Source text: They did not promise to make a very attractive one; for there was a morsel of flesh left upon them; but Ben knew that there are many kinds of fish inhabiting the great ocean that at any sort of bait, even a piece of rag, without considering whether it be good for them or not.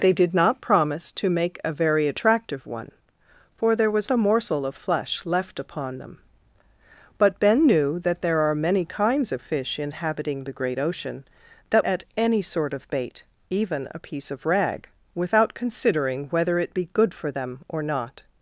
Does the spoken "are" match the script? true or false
true